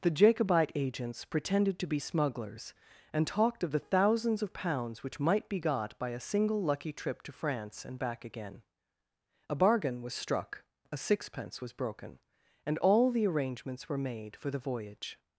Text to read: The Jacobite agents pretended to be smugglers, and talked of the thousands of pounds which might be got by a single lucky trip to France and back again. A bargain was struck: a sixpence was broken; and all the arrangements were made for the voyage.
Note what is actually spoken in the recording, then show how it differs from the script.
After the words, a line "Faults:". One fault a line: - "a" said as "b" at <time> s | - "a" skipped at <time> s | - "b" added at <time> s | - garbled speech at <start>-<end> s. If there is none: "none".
The Jacobite agents pretended to be smugglers, and talked of the thousands of pounds which might be got by a single lucky trip to France and back again. A bargain was struck: a sixpence was broken; and all the arrangements were made for the voyage.
Faults:
none